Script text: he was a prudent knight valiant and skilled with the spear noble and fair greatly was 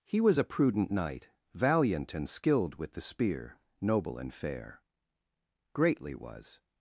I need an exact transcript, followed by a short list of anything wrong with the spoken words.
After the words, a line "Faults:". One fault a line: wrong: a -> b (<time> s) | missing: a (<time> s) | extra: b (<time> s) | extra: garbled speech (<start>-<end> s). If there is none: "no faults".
he was a prudent knight valiant and skilled with the spear noble and fair greatly was
Faults:
no faults